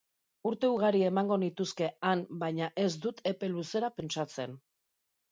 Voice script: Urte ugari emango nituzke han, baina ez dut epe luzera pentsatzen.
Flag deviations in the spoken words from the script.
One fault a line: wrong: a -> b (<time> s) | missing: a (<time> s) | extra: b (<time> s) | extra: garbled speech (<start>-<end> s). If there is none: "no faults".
no faults